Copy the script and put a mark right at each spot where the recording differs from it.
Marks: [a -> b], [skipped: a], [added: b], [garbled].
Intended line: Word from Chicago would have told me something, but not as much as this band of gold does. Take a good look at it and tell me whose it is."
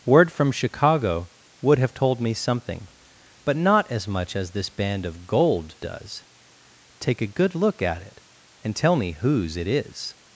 Word from Chicago would have told me something, but not as much as this band of gold does. Take a good look at it and tell me whose it is."